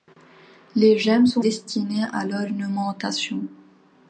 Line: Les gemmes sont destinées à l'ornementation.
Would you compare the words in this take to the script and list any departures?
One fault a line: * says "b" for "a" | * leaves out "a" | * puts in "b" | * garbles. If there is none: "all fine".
all fine